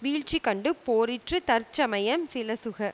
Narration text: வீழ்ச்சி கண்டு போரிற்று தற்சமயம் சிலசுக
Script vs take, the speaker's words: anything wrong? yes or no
no